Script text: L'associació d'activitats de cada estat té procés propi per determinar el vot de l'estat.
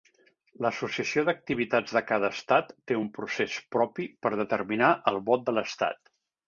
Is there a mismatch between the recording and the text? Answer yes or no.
yes